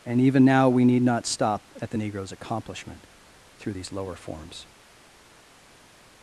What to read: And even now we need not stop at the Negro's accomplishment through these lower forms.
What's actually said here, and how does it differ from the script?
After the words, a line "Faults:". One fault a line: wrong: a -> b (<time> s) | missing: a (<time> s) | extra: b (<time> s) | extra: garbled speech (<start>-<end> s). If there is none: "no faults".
And even now we need not stop at the Negro's accomplishment through these lower forms.
Faults:
no faults